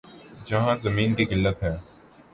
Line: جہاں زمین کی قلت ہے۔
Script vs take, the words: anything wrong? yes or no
no